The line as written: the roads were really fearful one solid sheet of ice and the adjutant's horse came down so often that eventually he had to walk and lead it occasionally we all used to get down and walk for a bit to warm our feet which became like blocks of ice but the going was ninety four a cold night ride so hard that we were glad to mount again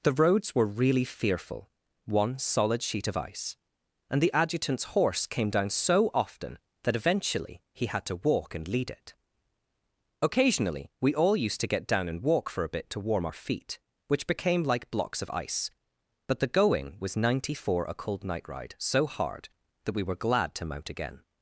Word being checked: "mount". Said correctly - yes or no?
yes